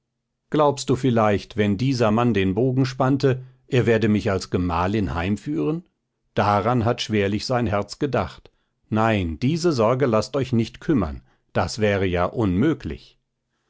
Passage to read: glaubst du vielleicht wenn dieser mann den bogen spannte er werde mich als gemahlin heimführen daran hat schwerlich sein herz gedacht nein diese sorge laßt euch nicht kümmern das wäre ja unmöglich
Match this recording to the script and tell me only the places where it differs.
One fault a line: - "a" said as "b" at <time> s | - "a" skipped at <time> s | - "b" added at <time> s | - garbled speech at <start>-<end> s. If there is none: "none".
none